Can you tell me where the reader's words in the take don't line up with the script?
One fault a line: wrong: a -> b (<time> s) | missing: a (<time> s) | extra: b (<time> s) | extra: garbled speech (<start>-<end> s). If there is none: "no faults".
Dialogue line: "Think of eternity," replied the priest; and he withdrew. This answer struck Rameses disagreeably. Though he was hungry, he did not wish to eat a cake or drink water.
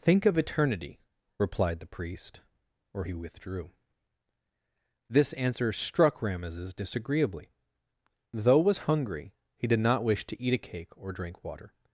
wrong: and -> or (2.9 s)
missing: he (8.6 s)